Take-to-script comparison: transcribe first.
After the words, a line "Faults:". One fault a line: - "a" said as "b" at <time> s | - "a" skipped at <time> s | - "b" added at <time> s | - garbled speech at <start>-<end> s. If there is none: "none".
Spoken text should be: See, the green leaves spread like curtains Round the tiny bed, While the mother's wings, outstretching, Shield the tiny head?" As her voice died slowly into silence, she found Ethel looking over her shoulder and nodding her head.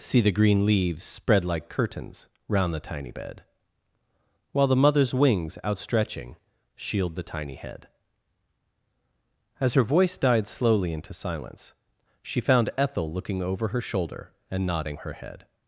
See, the green leaves spread like curtains Round the tiny bed, While the mother's wings, outstretching, Shield the tiny head?" As her voice died slowly into silence, she found Ethel looking over her shoulder and nodding her head.
Faults:
none